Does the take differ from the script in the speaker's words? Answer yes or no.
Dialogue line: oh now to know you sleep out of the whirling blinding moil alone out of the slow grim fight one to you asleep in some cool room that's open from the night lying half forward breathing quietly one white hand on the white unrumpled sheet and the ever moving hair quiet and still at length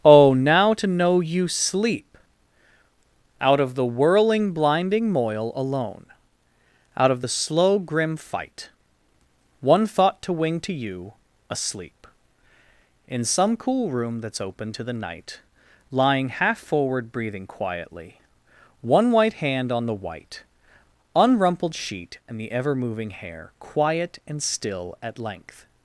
yes